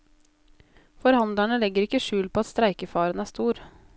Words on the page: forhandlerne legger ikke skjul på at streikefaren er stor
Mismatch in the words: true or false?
false